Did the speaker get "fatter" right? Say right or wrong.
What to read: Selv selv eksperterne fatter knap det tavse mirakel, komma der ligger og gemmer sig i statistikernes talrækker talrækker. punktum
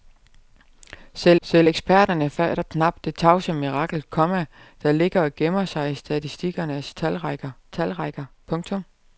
right